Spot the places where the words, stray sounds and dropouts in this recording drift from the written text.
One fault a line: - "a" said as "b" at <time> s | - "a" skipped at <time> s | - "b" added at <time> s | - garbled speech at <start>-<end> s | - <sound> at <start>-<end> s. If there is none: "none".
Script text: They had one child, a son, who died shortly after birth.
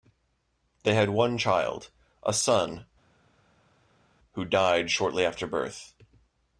none